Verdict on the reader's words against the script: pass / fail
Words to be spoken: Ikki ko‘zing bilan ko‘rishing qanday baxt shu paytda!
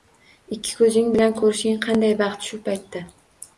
pass